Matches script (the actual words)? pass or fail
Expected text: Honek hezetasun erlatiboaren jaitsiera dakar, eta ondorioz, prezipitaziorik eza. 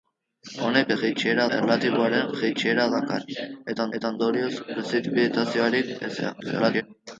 fail